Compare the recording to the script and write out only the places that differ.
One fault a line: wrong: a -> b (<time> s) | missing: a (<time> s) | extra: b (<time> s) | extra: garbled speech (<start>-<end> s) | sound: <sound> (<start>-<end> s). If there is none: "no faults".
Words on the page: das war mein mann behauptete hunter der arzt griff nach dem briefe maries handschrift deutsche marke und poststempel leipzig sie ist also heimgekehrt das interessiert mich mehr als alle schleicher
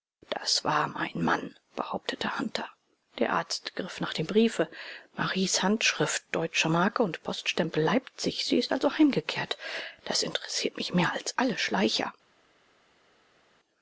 no faults